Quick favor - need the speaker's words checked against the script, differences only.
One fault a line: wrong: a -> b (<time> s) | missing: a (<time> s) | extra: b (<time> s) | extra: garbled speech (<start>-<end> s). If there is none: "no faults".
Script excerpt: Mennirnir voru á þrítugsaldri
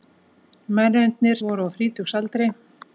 no faults